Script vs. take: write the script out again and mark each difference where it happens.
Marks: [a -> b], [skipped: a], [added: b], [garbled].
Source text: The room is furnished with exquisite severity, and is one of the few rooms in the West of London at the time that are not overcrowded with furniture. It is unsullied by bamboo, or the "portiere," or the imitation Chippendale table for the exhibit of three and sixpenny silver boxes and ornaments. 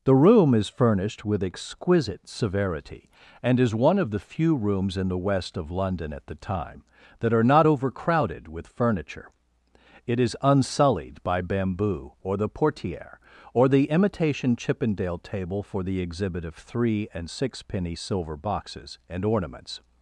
The room is furnished with exquisite severity, and is one of the few rooms in the West of London at the time that are not overcrowded with furniture. It is unsullied by bamboo, or the "portiere," or the imitation Chippendale table for the exhibit of three and sixpenny silver boxes and ornaments.